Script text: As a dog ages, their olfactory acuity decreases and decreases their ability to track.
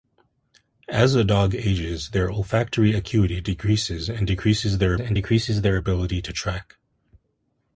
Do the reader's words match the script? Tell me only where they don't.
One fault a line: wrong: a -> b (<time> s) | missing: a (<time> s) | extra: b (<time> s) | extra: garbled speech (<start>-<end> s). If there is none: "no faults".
extra: and decreases their (5.0 s)